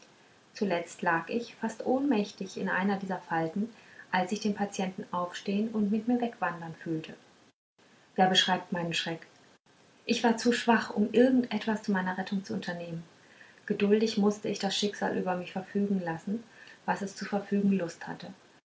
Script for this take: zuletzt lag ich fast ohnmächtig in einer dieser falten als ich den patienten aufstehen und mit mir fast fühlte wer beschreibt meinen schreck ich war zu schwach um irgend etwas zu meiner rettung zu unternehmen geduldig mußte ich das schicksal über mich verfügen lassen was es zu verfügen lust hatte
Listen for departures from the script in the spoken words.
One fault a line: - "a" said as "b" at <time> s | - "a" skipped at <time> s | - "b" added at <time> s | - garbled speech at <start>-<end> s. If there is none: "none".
- "fast" said as "wegwandern" at 6.2 s